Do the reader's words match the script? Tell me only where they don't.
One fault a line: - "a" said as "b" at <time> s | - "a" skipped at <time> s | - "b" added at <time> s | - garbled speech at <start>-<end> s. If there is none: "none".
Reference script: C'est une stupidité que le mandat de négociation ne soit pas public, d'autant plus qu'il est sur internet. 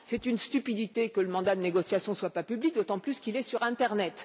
none